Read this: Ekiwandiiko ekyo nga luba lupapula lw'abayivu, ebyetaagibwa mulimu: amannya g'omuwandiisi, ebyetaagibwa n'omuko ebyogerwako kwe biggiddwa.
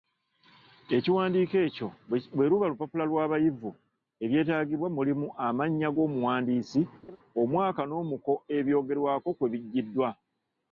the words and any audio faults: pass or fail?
fail